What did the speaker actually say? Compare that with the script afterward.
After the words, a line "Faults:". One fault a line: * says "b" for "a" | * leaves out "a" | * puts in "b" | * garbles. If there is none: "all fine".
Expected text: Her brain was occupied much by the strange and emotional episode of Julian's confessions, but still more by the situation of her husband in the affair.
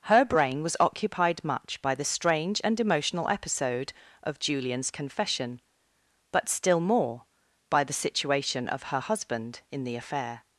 Her brain was occupied much by the strange and emotional episode of Julian's confession, but still more by the situation of her husband in the affair.
Faults:
* says "confession" for "confessions"